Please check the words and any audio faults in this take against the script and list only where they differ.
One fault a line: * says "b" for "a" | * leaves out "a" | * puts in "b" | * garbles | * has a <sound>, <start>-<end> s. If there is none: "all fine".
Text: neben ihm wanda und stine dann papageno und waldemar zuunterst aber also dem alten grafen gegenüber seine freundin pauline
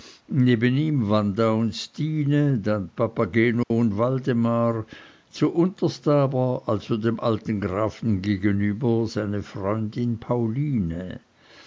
* has a dropout, 3.6-3.7 s